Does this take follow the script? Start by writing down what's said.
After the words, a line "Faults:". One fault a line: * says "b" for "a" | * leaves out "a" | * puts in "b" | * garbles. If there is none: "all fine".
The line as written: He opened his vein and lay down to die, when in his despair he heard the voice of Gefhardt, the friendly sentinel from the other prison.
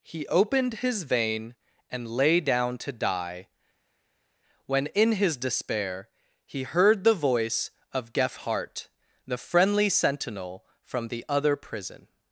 He opened his vein and lay down to die, when in his despair he heard the voice of Gefhardt, the friendly sentinel from the other prison.
Faults:
all fine